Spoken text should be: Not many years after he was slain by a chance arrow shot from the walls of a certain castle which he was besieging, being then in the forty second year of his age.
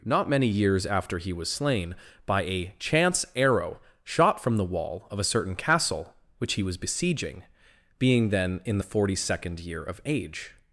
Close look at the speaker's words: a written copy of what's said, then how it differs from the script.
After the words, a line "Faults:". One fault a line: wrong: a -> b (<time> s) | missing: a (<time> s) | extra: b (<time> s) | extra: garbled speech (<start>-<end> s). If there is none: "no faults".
Not many years after he was slain by a chance arrow shot from the wall of a certain castle which he was besieging, being then in the forty second year of age.
Faults:
wrong: walls -> wall (4.7 s)
missing: his (10.0 s)